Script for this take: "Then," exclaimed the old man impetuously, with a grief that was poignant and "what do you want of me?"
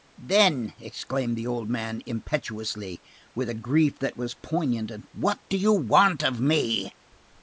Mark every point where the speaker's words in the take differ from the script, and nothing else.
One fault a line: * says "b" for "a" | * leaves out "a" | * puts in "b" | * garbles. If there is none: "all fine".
all fine